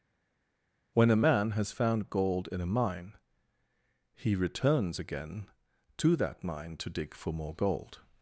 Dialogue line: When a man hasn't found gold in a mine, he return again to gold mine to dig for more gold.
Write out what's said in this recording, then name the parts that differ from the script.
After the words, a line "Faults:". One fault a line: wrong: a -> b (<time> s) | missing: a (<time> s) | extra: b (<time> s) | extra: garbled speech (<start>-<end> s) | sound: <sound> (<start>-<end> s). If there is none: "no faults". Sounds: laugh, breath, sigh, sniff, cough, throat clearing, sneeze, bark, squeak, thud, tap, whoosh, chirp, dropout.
When a man has found gold in a mine, he returns again to that mine to dig for more gold.
Faults:
wrong: hasn't -> has (1.5 s)
wrong: return -> returns (4.4 s)
wrong: gold -> that (6.2 s)